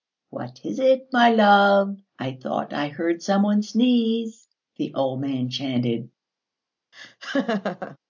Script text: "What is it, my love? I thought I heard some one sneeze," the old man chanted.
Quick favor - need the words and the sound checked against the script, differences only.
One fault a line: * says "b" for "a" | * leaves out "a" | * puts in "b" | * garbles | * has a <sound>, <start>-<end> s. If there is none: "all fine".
* has a laugh, 6.9-8.0 s